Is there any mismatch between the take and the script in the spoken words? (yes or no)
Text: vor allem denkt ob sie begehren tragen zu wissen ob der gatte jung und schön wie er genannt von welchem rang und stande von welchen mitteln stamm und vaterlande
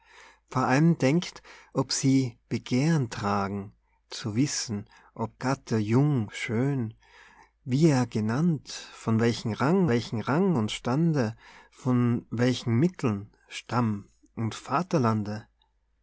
yes